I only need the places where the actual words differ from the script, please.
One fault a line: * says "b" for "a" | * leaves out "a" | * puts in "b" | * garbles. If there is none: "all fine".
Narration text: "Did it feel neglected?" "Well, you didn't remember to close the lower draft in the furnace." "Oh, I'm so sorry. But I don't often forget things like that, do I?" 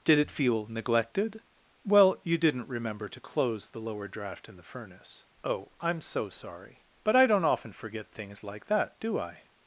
all fine